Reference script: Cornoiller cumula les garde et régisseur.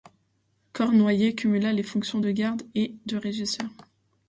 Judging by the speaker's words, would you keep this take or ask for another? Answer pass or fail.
fail